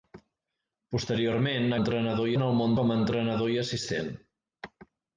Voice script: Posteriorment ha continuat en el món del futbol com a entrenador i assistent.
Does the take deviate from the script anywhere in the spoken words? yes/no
yes